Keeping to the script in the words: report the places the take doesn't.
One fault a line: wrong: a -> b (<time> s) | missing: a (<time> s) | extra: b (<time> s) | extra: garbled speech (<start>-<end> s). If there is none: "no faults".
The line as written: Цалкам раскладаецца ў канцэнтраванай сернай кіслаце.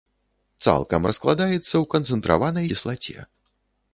missing: сернай (2.7 s)